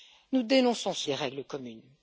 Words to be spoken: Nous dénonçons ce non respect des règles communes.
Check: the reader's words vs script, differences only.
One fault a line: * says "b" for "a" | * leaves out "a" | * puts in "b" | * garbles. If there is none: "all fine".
* leaves out "non respect"